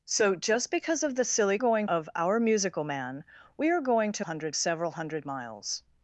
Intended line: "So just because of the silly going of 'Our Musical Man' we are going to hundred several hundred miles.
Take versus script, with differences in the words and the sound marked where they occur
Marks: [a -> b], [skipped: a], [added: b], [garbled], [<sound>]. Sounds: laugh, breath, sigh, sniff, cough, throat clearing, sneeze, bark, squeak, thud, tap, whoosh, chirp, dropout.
"So just because of the silly going of 'Our Musical Man' we are going to hundred several hundred miles.